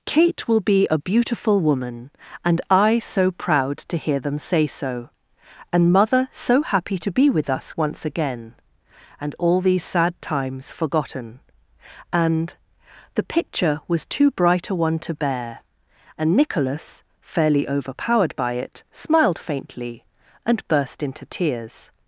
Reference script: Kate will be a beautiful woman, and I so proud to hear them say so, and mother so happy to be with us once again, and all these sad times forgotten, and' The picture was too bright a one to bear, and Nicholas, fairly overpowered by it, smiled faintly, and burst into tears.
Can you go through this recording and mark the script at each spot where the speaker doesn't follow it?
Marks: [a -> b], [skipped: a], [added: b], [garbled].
Kate will be a beautiful woman, and I so proud to hear them say so, and mother so happy to be with us once again, and all these sad times forgotten, and' The picture was too bright a one to bear, and Nicholas, fairly overpowered by it, smiled faintly, and burst into tears.